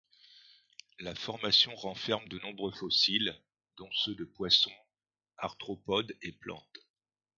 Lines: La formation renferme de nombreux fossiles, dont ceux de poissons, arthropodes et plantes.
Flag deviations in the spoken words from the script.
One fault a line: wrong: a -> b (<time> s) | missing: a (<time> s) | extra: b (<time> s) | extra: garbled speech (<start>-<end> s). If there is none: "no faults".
no faults